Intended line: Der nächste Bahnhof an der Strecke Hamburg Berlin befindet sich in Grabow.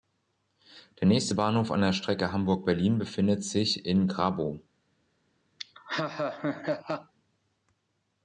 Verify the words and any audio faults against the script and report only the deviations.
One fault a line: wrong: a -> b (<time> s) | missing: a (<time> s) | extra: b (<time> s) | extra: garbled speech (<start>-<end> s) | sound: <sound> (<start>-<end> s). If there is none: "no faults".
sound: laugh (5.6-7.1 s)